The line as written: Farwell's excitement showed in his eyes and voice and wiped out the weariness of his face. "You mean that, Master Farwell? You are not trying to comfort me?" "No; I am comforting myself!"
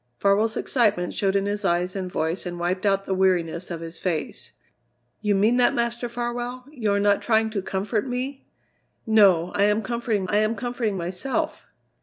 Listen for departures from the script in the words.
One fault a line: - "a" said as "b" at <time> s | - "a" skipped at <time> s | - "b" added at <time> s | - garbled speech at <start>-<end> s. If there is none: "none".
- "I am comforting" added at 10.3 s